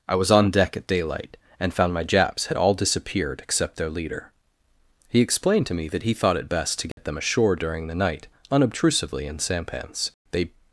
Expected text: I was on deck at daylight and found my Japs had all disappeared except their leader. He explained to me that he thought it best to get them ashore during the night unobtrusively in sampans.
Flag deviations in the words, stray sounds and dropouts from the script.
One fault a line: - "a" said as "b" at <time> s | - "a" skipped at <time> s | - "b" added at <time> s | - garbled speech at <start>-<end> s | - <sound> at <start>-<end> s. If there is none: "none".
- dropout at 6.9-7.0 s
- "They" added at 10.3 s